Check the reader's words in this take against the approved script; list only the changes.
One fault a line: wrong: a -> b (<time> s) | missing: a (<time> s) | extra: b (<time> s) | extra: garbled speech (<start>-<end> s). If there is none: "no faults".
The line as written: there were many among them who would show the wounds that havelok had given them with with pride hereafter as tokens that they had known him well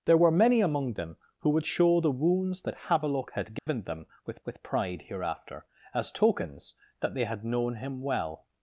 no faults